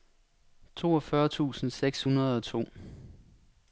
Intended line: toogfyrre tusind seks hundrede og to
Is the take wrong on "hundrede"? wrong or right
right